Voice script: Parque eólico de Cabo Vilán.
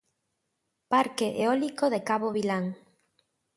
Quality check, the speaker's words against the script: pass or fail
pass